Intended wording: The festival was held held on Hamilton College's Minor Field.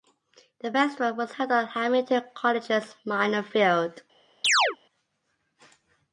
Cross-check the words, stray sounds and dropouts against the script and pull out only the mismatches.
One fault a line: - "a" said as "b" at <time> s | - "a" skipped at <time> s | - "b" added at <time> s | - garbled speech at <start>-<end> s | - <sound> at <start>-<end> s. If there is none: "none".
- "held" skipped at 1.5 s
- chirp at 4.4-4.8 s